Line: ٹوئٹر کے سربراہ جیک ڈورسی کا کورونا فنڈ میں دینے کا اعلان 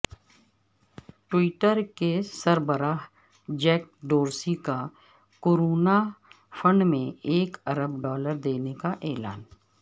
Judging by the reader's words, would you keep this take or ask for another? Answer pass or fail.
fail